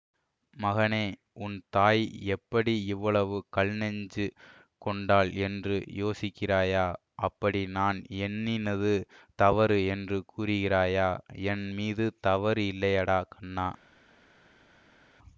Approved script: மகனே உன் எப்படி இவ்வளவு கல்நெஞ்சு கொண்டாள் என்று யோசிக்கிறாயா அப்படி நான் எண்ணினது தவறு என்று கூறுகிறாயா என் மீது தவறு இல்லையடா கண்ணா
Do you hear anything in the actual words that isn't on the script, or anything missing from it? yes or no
yes